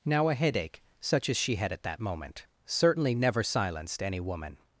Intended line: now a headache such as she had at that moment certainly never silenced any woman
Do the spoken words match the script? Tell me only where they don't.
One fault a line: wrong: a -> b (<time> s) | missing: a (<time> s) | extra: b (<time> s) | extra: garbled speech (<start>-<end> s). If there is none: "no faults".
no faults